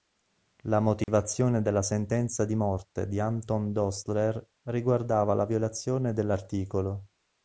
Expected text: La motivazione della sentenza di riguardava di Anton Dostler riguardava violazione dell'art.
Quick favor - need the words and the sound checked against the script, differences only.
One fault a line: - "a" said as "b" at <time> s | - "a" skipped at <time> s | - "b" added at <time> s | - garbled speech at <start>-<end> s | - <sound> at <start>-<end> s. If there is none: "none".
- dropout at 1.0-1.1 s
- "riguardava" said as "morte" at 2.5 s
- "la" added at 5.3 s